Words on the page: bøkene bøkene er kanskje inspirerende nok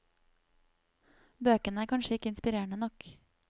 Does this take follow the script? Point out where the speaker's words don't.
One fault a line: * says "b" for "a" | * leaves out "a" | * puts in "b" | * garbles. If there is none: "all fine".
* leaves out "bøkene"
* puts in "ikke"